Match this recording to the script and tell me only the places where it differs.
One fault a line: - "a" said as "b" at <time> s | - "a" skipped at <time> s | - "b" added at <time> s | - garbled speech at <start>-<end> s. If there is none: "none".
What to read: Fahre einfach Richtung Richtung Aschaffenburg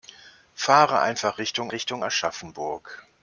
none